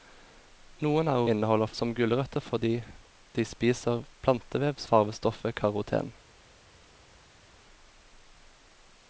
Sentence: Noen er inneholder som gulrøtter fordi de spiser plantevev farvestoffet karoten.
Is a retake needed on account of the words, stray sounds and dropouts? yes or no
no